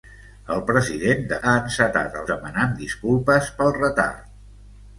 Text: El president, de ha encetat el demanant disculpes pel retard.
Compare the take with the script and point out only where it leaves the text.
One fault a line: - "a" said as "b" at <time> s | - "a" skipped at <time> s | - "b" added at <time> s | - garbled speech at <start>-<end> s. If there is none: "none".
none